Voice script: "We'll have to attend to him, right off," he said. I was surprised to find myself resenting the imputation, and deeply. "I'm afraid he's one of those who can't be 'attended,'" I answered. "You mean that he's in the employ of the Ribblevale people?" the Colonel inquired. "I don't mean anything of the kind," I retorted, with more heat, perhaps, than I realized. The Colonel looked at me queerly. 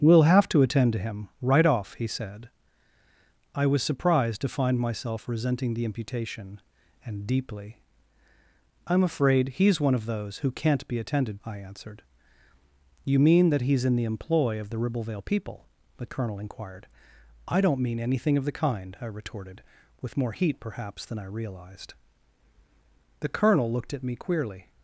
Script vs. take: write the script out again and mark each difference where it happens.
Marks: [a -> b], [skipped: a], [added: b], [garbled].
"We'll have to attend to him, right off," he said. I was surprised to find myself resenting the imputation, and deeply. "I'm afraid he's one of those who can't be 'attended,'" I answered. "You mean that he's in the employ of the Ribblevale people?" the Colonel inquired. "I don't mean anything of the kind," I retorted, with more heat, perhaps, than I realized. The Colonel looked at me queerly.